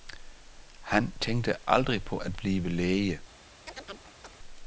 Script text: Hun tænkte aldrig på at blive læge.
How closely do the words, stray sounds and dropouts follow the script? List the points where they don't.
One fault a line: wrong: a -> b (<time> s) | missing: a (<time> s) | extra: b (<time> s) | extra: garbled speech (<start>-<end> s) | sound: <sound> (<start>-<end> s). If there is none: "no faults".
wrong: Hun -> Han (0.8 s)
sound: chirp (3.7-4.4 s)